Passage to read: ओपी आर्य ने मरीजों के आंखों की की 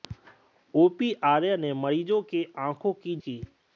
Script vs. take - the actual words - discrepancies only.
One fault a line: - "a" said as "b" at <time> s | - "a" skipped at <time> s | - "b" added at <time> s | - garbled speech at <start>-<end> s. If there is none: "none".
none